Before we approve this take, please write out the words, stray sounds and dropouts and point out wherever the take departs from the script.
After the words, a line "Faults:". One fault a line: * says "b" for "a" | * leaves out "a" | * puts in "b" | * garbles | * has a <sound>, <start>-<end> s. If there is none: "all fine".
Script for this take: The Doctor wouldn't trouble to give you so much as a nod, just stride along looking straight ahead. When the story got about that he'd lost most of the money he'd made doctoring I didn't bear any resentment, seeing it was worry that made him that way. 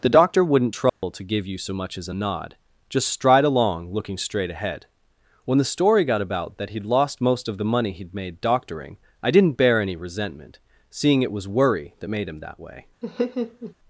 The Doctor wouldn't trouble to give you so much as a nod, just stride along looking straight ahead. When the story got about that he'd lost most of the money he'd made doctoring I didn't bear any resentment, seeing it was worry that made him that way.
Faults:
* has a dropout, 0.9-1.0 s
* has a laugh, 13.0-13.7 s